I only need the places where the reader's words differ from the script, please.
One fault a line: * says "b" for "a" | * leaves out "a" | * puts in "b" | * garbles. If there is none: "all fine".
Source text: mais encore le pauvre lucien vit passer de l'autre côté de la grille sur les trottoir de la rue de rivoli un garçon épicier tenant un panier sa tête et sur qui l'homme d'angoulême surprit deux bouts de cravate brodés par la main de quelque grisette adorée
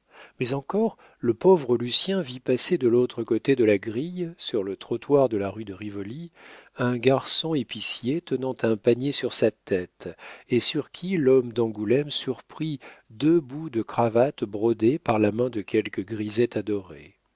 * says "le" for "les"
* puts in "sur"